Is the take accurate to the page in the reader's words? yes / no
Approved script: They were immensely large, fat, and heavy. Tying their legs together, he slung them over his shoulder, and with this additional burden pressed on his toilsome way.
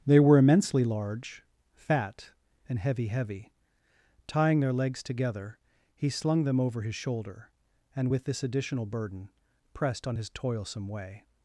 no